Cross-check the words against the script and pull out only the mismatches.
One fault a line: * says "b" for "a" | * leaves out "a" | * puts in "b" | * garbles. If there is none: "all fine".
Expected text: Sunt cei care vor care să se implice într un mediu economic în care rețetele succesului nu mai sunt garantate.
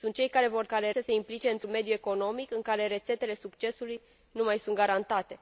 all fine